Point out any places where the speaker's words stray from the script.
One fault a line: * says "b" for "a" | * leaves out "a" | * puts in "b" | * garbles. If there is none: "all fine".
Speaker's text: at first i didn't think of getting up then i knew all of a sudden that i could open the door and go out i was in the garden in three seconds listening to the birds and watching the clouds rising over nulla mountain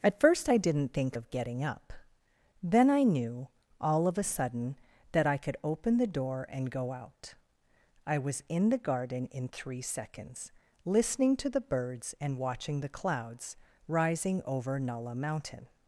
all fine